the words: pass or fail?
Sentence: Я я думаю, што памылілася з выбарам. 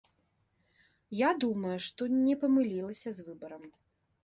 fail